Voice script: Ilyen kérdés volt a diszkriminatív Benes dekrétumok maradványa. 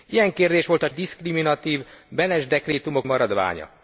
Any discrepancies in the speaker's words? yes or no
no